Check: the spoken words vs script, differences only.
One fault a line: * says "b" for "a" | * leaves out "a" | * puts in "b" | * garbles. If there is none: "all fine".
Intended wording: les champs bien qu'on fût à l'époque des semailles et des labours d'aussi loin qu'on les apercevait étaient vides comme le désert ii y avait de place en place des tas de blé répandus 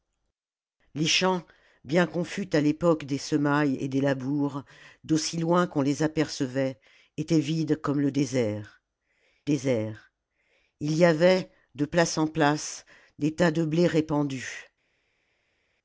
* puts in "désert"